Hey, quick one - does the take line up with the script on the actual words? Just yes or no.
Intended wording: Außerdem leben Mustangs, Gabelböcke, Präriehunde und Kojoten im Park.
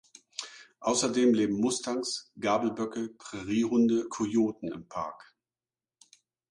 no